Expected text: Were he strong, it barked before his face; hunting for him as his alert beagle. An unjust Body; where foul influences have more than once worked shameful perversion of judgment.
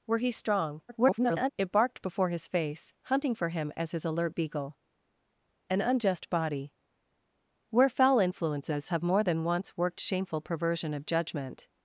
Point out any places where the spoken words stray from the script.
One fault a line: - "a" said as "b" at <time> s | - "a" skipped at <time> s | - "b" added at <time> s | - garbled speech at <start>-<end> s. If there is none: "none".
- garbled speech at 0.9-1.5 s